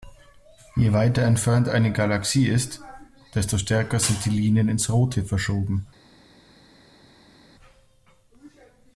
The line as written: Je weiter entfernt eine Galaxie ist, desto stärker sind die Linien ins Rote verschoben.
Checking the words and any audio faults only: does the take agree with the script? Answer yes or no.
yes